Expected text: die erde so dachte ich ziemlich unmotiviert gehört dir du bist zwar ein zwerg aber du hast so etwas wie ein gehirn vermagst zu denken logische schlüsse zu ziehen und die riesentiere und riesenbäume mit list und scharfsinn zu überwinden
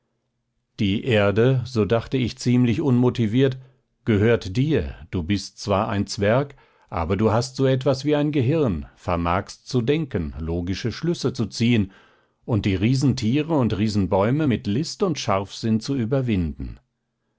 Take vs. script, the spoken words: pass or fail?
pass